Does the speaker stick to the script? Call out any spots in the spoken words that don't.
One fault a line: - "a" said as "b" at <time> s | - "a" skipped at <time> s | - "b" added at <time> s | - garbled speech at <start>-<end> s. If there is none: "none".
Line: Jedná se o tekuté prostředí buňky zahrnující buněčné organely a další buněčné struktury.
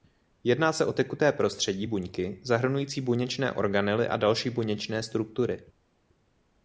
none